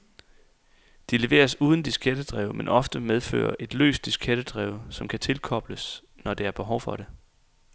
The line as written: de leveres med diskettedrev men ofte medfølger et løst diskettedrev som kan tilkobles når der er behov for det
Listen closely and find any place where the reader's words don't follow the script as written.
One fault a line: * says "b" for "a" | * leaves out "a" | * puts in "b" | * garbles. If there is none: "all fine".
* says "uden" for "med"